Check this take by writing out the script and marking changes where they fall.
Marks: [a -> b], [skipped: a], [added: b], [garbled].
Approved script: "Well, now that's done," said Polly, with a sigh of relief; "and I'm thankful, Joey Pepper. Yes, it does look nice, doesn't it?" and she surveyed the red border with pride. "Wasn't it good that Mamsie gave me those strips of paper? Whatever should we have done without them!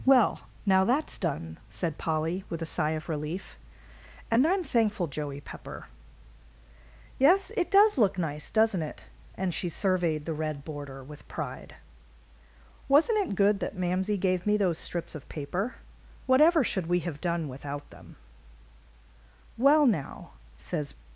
"Well, now that's done," said Polly, with a sigh of relief; "and I'm thankful, Joey Pepper. Yes, it does look nice, doesn't it?" and she surveyed the red border with pride. "Wasn't it good that Mamsie gave me those strips of paper? Whatever should we have done without them! [added: Well now says]